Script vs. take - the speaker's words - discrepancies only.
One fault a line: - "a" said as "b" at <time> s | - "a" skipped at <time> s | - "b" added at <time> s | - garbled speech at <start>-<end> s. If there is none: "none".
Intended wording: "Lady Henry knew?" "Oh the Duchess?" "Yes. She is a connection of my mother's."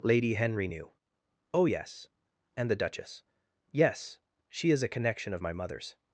- "yes And" added at 1.6 s